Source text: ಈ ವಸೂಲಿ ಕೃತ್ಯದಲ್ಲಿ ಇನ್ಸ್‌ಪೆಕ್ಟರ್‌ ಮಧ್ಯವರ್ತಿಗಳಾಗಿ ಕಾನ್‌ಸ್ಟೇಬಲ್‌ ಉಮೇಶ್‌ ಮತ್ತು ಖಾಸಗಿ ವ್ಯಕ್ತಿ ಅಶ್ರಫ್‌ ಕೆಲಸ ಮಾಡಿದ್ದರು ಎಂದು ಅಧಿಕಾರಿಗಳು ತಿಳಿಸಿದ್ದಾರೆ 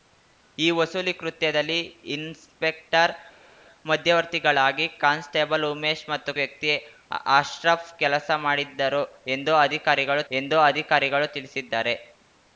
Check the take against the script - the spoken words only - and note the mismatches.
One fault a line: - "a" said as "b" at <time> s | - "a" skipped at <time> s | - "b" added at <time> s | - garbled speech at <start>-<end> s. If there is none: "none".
- "ಖಾಸಗಿ" skipped at 6.3 s
- "ಎಂದು ಅಧಿಕಾರಿಗಳು" added at 10.3 s